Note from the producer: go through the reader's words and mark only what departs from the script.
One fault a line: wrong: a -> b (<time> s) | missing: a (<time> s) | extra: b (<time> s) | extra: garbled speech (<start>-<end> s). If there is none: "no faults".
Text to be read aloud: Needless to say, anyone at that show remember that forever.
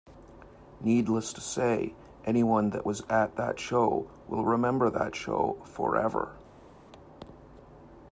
extra: that was (2.7 s)
extra: will (4.3 s)
extra: show (5.1 s)